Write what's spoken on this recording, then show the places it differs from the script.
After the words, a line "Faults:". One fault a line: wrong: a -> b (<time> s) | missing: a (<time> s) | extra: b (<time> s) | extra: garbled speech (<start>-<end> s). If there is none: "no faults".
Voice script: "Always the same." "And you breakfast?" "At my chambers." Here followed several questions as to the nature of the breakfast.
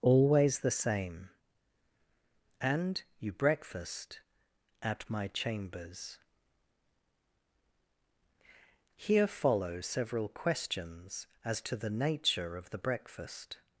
"Always the same." "And you breakfast?" "At my chambers." Here follow several questions as to the nature of the breakfast.
Faults:
wrong: followed -> follow (9.3 s)